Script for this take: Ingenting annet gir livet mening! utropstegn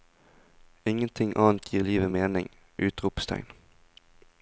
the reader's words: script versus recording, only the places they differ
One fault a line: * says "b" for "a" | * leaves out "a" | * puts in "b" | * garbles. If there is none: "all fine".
all fine